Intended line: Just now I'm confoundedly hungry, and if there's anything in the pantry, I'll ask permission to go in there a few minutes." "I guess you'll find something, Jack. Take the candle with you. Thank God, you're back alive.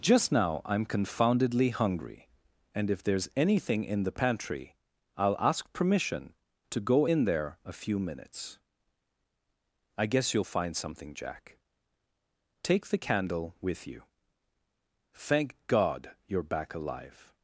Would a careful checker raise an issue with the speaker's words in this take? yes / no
no